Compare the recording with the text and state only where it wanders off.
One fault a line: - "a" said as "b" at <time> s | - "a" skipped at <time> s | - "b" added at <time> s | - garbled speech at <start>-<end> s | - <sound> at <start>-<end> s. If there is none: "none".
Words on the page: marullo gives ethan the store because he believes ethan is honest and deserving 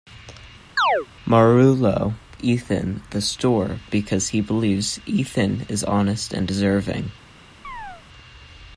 - chirp at 0.8-1.1 s
- "gives" skipped at 2.1 s
- chirp at 7.6-8.0 s